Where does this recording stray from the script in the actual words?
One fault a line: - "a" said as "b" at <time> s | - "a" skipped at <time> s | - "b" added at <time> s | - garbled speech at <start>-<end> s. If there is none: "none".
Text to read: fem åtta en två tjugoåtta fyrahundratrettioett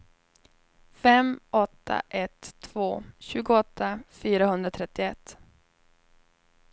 - "en" said as "ett" at 2.1 s